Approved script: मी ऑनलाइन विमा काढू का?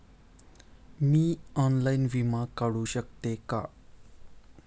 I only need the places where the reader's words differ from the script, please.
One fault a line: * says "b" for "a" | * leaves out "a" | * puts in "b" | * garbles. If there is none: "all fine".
* puts in "शकते"